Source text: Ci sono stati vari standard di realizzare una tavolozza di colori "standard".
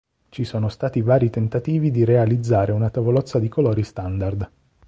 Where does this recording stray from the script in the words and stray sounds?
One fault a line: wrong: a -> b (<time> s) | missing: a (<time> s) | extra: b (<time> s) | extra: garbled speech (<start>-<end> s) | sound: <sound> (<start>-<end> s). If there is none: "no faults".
wrong: standard -> tentativi (1.3 s)